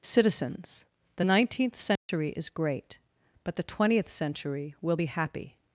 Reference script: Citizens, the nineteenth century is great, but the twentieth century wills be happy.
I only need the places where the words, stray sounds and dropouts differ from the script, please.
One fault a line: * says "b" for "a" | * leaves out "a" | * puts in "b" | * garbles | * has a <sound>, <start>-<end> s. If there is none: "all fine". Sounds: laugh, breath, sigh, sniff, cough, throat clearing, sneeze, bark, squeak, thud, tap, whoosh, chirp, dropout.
* has a dropout, 2.0-2.1 s
* says "will" for "wills"